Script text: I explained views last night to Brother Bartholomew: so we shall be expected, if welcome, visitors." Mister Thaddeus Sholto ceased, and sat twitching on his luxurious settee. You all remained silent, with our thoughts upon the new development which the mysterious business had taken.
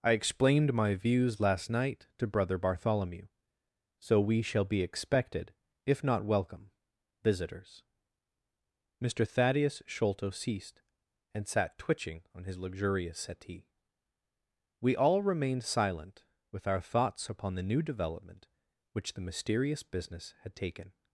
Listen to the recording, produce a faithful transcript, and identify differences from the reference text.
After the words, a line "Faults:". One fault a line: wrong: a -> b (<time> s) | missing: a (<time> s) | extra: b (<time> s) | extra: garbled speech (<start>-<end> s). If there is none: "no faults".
I explained my views last night to Brother Bartholomew: so we shall be expected, if not welcome, visitors." Mister Thaddeus Sholto ceased, and sat twitching on his luxurious settee. We all remained silent, with our thoughts upon the new development which the mysterious business had taken.
Faults:
extra: my (0.7 s)
extra: not (6.0 s)
wrong: You -> We (14.8 s)